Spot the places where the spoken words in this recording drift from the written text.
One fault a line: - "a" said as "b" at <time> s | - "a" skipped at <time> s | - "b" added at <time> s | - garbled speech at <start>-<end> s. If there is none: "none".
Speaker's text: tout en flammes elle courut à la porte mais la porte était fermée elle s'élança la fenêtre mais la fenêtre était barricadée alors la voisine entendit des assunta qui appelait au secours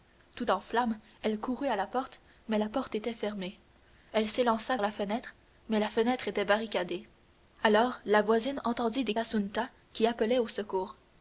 none